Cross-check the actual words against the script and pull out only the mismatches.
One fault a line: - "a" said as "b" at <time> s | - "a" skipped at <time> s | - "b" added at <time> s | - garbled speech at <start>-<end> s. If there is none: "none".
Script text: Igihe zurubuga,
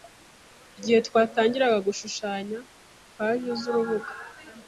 - "twatangiraga gushushanya paji" added at 1.1 s